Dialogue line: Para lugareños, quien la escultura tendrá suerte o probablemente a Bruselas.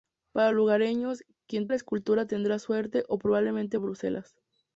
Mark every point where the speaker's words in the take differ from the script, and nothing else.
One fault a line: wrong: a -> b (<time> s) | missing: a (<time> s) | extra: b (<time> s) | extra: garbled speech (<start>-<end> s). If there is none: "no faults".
no faults